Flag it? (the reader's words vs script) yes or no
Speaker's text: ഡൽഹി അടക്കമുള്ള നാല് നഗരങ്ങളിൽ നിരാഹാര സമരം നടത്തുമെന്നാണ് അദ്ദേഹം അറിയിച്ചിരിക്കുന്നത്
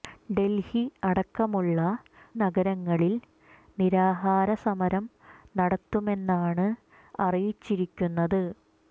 yes